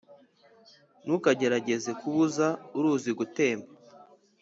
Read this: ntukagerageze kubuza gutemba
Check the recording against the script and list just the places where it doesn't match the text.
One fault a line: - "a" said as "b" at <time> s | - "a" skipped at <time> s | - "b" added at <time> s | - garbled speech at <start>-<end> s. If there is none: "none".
- "uruzi" added at 2.8 s